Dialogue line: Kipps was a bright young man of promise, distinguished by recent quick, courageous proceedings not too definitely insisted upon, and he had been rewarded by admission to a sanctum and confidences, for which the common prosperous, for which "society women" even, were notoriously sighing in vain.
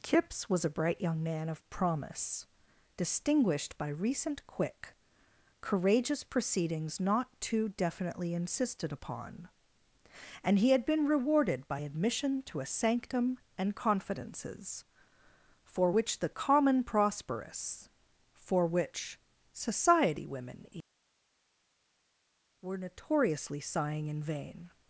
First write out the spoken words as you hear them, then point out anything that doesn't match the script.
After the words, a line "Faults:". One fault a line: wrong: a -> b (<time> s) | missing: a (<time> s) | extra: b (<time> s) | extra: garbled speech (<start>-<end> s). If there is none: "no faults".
Kipps was a bright young man of promise, distinguished by recent quick, courageous proceedings not too definitely insisted upon, and he had been rewarded by admission to a sanctum and confidences, for which the common prosperous, for which "society women" were notoriously sighing in vain.
Faults:
missing: even (20.7 s)